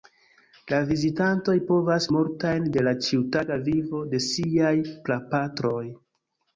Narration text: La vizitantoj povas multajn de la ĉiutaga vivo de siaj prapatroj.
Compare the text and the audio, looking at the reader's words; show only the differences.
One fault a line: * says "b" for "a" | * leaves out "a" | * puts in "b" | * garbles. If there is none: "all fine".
all fine